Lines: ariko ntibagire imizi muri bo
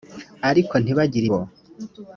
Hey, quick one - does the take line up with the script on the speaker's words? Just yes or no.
no